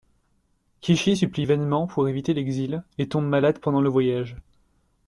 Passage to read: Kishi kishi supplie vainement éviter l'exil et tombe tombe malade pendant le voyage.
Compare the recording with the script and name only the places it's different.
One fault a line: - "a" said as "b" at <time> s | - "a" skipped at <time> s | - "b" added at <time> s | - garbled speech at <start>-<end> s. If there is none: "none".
- "kishi" skipped at 1.1 s
- "pour" added at 1.9 s
- "tombe" skipped at 3.3 s